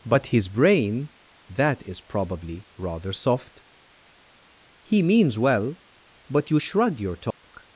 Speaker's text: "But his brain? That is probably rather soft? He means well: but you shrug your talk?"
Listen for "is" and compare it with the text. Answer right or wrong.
right